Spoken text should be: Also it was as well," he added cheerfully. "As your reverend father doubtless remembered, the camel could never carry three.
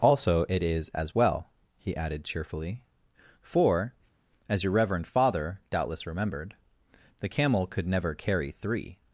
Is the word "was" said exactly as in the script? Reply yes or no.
no